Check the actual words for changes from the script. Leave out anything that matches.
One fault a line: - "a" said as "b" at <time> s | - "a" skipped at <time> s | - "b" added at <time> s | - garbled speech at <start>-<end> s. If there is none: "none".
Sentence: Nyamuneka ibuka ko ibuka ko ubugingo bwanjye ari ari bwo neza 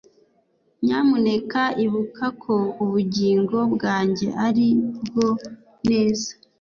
- "ibuka ko" skipped at 2.5 s
- "ari" skipped at 4.7 s